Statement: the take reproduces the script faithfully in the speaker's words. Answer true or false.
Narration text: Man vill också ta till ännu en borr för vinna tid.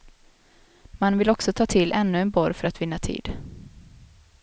false